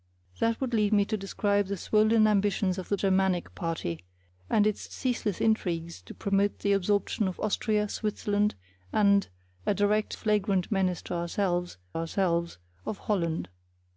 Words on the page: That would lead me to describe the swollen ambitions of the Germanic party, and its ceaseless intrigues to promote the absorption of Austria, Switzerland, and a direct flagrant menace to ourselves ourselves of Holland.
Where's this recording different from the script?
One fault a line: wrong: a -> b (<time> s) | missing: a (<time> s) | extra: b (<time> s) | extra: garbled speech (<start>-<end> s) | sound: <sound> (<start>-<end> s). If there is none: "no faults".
no faults